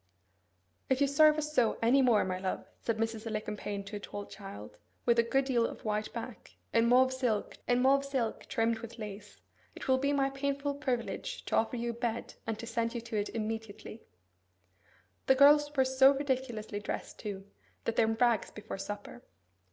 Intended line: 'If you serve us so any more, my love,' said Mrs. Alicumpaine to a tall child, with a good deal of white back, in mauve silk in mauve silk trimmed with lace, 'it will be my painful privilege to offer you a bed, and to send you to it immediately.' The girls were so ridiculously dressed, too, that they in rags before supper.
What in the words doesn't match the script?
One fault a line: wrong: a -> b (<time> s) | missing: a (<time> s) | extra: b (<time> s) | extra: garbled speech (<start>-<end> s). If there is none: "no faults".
no faults